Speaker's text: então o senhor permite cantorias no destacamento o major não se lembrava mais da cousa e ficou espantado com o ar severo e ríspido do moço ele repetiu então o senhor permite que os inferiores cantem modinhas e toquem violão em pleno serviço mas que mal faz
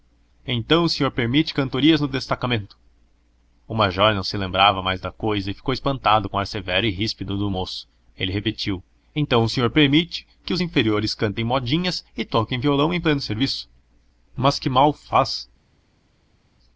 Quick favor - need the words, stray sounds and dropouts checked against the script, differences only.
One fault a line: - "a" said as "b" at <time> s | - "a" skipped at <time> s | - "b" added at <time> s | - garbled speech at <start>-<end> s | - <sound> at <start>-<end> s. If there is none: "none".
none